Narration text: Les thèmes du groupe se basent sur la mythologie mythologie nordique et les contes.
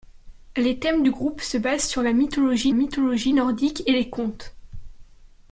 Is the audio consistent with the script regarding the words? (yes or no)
yes